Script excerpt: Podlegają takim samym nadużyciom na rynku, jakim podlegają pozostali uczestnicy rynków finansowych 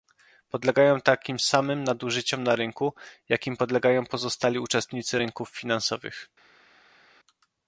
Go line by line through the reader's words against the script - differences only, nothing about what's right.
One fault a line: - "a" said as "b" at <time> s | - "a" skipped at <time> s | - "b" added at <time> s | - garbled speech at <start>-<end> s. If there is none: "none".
none